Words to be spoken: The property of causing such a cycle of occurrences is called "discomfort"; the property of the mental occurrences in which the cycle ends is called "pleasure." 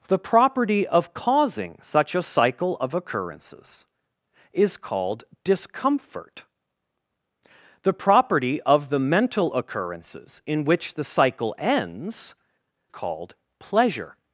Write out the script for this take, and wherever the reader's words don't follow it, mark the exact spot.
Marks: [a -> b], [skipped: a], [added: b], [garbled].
The property of causing such a cycle of occurrences is called "discomfort"; the property of the mental occurrences in which the cycle ends [skipped: is] called "pleasure."